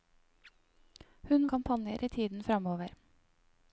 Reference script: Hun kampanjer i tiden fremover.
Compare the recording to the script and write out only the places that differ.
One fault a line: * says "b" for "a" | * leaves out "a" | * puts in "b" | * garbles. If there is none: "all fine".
all fine